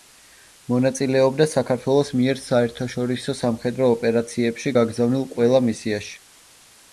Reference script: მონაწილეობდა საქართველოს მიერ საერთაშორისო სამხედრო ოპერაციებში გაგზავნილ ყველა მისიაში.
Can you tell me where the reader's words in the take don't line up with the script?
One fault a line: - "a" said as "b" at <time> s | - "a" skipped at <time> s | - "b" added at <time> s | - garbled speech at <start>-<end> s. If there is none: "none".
none